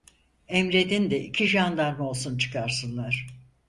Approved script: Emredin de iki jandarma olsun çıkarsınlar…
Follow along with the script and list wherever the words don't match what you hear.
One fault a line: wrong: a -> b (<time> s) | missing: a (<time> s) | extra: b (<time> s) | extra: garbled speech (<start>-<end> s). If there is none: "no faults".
no faults